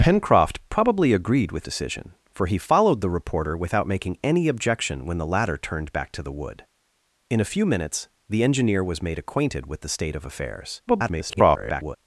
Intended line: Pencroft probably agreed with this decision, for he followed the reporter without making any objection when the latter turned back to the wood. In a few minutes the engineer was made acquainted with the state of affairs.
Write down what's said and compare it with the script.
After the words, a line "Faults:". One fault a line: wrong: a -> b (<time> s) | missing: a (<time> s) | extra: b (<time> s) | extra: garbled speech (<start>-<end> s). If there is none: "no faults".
Pencroft probably agreed with decision, for he followed the reporter without making any objection when the latter turned back to the wood. In a few minutes the engineer was made acquainted with the state of affairs. [garbled]
Faults:
missing: this (1.7 s)
extra: garbled speech (10.9-12.0 s)